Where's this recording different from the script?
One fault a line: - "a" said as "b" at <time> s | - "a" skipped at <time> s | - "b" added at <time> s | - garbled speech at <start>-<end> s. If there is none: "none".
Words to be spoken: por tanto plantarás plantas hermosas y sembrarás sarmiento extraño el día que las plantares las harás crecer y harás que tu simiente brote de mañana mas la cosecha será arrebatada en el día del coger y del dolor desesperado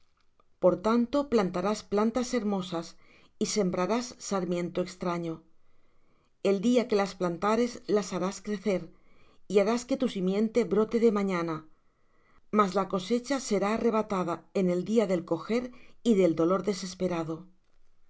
none